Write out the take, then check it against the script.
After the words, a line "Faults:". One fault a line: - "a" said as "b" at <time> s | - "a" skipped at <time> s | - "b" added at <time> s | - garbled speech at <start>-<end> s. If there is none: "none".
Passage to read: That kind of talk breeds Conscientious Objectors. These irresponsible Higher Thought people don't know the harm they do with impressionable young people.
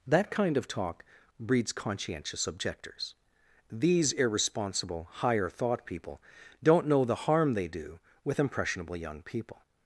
That kind of talk breeds Conscientious Objectors. These irresponsible Higher Thought people don't know the harm they do with impressionable young people.
Faults:
none